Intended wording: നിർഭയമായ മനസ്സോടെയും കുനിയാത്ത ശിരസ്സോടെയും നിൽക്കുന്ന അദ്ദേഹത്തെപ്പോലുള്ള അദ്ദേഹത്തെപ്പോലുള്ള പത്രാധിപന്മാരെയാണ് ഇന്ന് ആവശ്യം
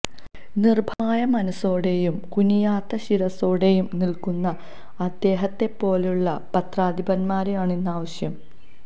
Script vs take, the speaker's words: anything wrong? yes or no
yes